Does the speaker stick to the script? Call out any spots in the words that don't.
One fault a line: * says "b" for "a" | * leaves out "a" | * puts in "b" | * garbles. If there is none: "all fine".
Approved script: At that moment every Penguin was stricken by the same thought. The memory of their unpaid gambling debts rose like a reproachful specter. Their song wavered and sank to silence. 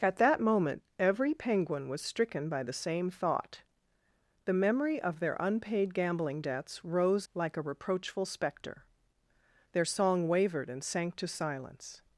all fine